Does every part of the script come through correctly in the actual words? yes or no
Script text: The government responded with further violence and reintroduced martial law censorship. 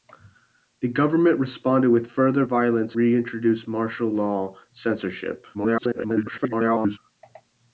no